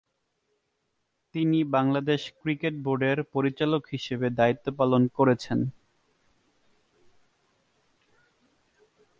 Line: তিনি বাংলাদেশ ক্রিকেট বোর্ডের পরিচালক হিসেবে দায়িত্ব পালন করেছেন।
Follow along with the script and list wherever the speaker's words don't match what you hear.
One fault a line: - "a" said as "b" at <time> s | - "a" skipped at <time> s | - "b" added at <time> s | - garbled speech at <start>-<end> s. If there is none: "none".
none